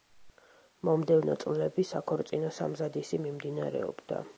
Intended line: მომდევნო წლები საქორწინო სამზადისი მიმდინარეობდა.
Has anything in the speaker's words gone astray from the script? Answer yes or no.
no